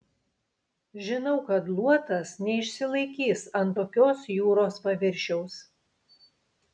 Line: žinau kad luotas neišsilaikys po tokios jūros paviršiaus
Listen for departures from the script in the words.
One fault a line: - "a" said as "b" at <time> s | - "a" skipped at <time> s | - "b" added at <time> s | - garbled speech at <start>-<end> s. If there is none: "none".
- "po" said as "ant" at 3.6 s